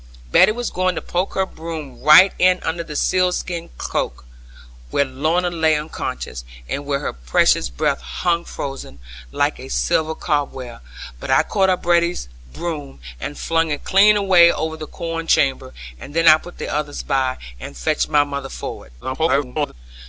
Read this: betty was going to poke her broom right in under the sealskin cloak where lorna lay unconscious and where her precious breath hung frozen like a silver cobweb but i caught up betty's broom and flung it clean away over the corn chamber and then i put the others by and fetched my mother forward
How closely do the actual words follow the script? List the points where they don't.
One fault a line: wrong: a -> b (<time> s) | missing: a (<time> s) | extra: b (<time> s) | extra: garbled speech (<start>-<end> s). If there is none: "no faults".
extra: garbled speech (19.0-19.7 s)